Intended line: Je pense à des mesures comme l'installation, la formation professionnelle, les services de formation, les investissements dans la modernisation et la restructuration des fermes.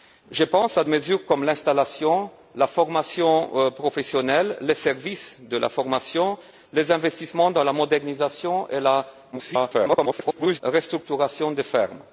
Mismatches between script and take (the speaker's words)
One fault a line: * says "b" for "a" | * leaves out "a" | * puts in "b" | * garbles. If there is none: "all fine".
* leaves out "des"
* garbles